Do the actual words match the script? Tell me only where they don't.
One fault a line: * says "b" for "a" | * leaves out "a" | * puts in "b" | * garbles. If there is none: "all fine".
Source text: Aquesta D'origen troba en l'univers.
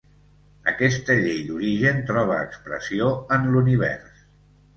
* puts in "Llei"
* puts in "expressió"